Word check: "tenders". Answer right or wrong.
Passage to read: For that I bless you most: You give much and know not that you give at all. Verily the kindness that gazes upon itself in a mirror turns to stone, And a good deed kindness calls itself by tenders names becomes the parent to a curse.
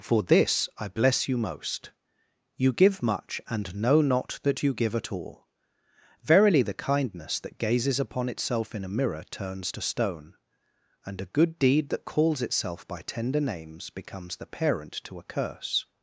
wrong